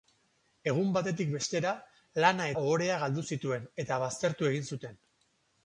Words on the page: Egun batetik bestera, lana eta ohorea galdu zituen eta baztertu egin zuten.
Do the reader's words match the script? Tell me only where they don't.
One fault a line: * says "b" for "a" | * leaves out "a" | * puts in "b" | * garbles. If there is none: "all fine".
* leaves out "eta"